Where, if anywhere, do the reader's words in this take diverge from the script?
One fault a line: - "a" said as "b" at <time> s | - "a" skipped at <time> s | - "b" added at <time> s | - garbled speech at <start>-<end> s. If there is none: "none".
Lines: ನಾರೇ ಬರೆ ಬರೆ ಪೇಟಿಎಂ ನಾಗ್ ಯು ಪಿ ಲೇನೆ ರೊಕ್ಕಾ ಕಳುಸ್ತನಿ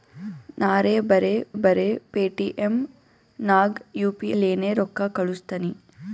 none